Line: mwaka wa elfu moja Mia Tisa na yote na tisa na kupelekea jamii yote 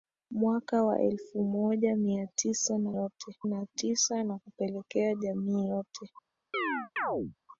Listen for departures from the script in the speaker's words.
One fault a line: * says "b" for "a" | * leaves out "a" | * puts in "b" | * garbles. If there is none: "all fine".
all fine